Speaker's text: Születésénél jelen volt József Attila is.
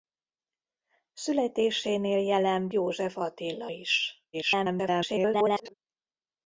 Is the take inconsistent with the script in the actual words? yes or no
yes